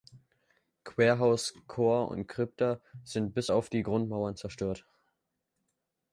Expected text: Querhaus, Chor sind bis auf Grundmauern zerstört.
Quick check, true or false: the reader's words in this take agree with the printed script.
false